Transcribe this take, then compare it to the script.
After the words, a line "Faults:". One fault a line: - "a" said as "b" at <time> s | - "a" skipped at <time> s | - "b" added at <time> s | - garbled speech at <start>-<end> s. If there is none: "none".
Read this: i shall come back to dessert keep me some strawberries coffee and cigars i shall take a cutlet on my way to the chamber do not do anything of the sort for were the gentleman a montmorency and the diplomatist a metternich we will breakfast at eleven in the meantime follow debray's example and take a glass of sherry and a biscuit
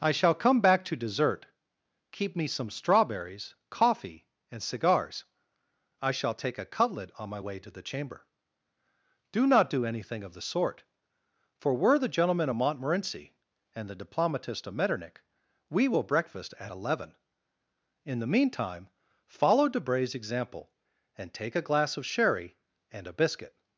i shall come back to dessert keep me some strawberries coffee and cigars i shall take a cutlet on my way to the chamber do not do anything of the sort for were the gentleman of montmorency and the diplomatist of metternich we will breakfast at eleven in the meantime follow debray's example and take a glass of sherry and a biscuit
Faults:
- "a" said as "of" at 12.5 s
- "a" said as "of" at 14.7 s